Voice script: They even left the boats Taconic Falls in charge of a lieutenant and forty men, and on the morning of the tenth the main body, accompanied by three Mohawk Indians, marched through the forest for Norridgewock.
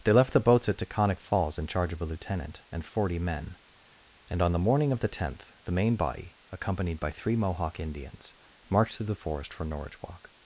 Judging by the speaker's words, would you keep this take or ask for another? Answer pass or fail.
fail